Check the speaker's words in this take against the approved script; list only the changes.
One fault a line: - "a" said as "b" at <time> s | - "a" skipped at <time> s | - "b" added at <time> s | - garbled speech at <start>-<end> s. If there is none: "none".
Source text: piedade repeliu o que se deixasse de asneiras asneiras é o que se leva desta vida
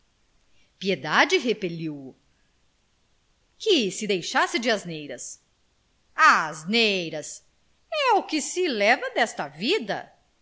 none